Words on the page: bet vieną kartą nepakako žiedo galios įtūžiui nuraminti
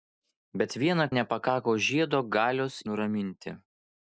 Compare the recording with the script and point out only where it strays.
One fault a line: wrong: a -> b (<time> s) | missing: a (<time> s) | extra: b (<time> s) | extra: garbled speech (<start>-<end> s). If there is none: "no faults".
missing: kartą (1.1 s)
missing: įtūžiui (2.8 s)